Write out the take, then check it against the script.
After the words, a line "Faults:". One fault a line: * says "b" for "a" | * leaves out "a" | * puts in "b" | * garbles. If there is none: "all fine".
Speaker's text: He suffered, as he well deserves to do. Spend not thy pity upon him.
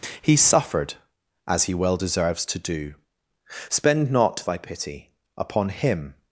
He suffered, as he well deserves to do. Spend not thy pity upon him.
Faults:
all fine